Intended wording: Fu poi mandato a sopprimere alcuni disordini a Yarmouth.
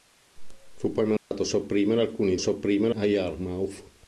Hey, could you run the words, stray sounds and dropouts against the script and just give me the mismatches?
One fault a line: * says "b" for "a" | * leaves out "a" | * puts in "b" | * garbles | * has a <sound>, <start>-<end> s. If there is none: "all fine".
* has a dropout, 1.2-1.3 s
* says "sopprimere" for "disordini"